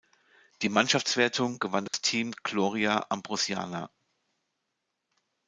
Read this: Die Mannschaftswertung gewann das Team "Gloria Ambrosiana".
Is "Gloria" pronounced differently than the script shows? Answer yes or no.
no